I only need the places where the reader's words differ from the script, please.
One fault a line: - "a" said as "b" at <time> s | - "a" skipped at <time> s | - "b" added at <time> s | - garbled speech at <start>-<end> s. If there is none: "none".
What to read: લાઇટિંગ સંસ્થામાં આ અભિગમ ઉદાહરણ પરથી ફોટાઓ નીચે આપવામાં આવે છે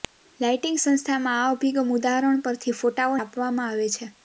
- "નીચે" skipped at 3.2 s